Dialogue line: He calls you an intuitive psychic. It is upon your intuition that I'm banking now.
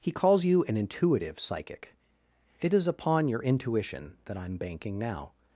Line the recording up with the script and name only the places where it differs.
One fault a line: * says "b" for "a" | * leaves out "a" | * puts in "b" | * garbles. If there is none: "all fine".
all fine